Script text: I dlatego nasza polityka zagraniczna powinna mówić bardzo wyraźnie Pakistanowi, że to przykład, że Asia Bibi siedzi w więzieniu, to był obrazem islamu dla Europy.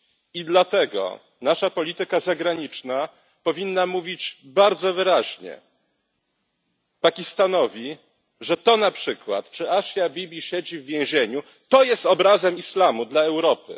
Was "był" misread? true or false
true